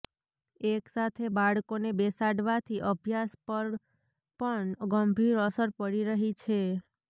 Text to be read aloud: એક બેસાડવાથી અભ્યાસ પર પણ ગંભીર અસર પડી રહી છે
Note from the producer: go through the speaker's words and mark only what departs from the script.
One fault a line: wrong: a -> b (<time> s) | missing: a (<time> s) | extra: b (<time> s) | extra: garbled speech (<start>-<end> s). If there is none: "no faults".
extra: સાથે બાળકોને (0.9 s)